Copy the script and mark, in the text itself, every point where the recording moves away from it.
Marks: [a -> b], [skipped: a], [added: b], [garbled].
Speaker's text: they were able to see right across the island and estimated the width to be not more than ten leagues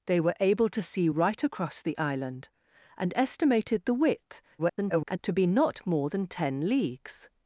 they were able to see right across the island and estimated the width [garbled] to be not more than ten leagues